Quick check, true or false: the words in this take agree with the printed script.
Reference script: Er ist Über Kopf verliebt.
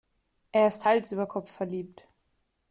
false